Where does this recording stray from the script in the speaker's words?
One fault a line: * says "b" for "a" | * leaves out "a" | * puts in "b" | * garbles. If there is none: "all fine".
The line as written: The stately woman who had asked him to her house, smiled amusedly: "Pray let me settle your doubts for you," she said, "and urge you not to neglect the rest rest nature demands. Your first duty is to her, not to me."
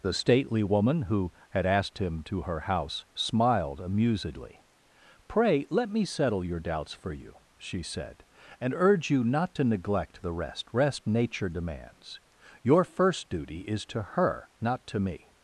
all fine